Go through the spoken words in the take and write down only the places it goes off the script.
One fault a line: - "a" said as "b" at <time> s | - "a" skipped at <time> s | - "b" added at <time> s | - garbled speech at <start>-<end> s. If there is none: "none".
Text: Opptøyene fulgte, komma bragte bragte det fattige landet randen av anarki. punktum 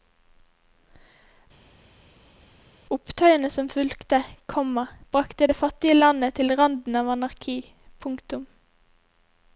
- "som" added at 3.6 s
- "bragte" skipped at 5.5 s
- "til" added at 6.4 s